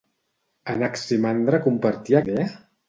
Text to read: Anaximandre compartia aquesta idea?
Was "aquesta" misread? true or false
true